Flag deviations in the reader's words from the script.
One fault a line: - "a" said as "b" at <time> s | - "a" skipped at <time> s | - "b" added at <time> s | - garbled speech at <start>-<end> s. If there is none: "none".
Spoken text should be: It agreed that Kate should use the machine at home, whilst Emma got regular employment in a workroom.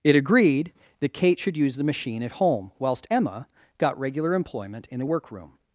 none